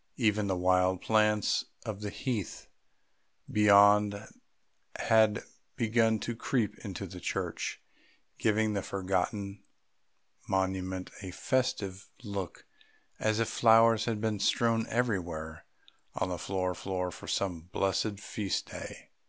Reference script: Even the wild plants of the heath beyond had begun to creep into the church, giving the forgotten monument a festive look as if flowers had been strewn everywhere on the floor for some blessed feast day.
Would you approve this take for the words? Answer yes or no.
no